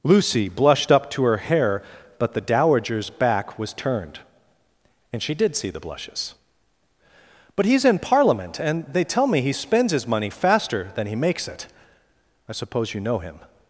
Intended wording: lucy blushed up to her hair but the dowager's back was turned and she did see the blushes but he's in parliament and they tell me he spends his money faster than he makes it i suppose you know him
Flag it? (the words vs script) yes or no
no